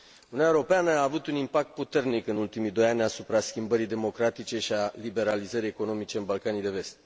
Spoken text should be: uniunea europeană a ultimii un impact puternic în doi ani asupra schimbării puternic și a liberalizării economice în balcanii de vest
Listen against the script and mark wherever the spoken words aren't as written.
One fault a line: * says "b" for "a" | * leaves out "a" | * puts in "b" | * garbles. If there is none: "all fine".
* says "avut" for "ultimii"
* puts in "ultimii"
* says "democratice" for "puternic"